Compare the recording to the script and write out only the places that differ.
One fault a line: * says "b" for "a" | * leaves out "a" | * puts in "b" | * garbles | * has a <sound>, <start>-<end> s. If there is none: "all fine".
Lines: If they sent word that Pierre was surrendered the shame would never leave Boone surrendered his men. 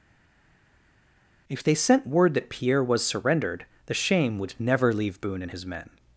* says "and" for "surrendered"